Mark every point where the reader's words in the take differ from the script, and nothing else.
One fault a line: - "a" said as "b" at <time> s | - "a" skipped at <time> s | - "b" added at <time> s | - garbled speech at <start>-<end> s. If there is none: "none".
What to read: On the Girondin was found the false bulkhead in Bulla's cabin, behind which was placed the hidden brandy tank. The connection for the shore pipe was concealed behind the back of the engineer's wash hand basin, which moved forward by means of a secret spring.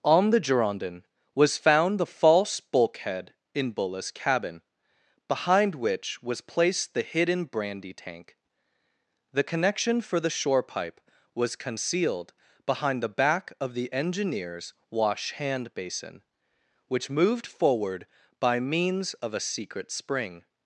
none